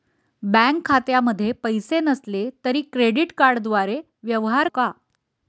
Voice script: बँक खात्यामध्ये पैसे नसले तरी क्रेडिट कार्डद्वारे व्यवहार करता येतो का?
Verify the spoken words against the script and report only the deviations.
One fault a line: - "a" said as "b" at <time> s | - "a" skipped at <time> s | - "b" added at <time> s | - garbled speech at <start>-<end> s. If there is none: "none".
- "करता येतो" skipped at 4.7 s